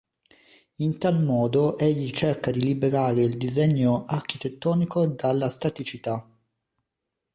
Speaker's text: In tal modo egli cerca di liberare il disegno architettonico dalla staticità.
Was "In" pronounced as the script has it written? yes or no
yes